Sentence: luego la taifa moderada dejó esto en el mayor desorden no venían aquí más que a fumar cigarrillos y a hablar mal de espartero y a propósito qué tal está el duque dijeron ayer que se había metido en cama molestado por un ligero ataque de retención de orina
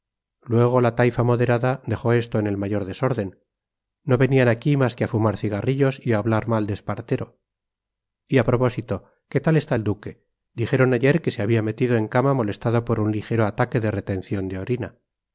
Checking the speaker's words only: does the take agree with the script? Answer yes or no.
yes